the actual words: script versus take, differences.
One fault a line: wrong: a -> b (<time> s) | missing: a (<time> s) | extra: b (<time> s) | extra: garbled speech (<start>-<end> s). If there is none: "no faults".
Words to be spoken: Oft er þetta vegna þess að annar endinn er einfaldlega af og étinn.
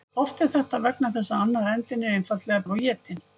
no faults